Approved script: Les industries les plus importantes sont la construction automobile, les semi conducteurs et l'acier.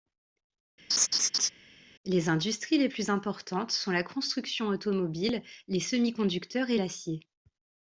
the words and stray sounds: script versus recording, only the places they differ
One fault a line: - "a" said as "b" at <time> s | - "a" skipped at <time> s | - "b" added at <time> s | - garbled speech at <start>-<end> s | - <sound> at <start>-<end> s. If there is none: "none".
- laugh at 0.9-1.5 s